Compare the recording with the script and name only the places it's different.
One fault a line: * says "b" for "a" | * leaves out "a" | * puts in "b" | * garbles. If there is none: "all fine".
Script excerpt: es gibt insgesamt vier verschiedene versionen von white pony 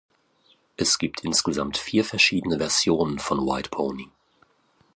all fine